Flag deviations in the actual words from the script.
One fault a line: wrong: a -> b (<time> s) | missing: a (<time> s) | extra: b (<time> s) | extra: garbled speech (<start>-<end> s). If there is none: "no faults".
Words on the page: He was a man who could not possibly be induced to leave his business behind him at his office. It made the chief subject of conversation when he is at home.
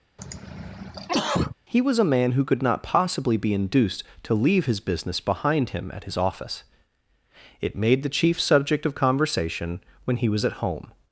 wrong: is -> was (10.3 s)